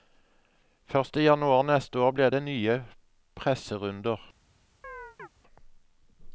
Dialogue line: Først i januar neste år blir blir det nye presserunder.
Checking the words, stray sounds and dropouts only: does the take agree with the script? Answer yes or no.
no